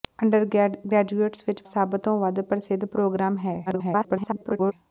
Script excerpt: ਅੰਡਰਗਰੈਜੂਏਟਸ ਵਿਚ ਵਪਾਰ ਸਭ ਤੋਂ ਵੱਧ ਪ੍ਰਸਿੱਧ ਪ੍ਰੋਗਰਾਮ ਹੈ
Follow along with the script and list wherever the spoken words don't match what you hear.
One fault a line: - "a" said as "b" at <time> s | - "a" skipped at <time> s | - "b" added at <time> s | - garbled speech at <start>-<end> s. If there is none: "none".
- "ਵਪਾਰ" skipped at 1.6 s
- garbled speech at 3.7-4.7 s